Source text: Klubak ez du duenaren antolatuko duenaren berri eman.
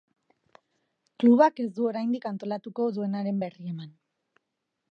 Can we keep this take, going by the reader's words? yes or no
no